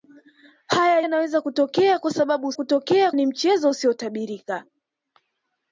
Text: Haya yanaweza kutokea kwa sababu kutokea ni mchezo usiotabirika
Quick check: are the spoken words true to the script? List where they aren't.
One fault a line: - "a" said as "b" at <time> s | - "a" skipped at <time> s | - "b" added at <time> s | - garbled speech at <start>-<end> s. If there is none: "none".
none